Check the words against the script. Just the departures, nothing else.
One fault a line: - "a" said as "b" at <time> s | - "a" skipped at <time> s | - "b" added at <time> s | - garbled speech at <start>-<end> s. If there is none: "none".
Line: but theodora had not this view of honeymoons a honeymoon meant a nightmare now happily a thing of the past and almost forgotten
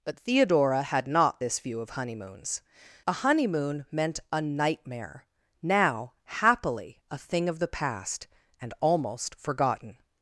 none